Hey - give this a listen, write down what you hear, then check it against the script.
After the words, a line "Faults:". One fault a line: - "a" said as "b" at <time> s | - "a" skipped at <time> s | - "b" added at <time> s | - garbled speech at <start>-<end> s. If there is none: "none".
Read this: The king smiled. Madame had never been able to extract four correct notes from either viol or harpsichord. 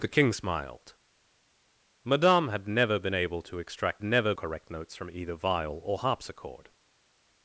The king smiled. Madame had never been able to extract never correct notes from either viol or harpsichord.
Faults:
- "four" said as "never" at 4.0 s